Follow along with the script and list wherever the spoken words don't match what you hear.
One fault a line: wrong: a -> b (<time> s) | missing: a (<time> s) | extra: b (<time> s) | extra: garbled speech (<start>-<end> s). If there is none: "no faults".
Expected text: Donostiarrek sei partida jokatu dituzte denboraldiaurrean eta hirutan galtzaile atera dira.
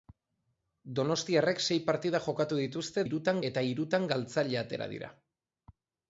wrong: denboraldiaurrean -> hirutan (3.1 s)